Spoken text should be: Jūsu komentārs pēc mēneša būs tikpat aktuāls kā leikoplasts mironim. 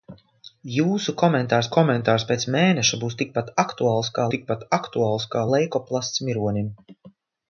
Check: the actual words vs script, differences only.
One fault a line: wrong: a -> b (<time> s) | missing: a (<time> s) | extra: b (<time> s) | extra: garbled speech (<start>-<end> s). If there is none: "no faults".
extra: komentārs (1.8 s)
extra: tikpat aktuāls kā (4.3 s)